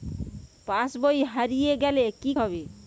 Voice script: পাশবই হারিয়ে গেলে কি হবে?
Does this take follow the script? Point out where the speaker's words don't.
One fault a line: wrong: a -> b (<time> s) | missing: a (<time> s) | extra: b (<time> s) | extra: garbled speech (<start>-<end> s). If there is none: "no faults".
no faults